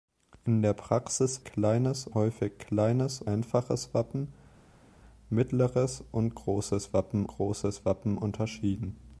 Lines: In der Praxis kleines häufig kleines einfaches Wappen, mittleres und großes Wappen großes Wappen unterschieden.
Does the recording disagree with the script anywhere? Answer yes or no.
no